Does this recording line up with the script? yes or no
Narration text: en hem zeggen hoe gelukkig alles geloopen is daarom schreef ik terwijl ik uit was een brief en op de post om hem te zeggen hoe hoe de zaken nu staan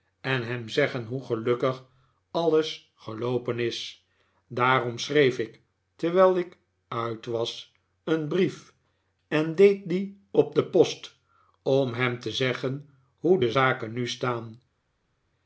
no